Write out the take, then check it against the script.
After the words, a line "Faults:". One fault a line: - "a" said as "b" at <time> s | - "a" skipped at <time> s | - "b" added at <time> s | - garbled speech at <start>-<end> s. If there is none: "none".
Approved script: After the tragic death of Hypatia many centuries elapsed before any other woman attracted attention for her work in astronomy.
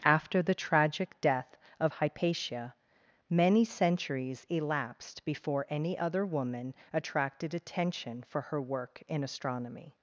After the tragic death of Hypatia many centuries elapsed before any other woman attracted attention for her work in astronomy.
Faults:
none